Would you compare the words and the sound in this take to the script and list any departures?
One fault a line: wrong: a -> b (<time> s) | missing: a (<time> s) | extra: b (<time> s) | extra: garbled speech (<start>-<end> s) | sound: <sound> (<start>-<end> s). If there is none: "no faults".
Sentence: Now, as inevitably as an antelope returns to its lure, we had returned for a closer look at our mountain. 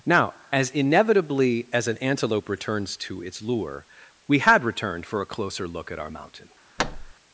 sound: thud (6.8-7.1 s)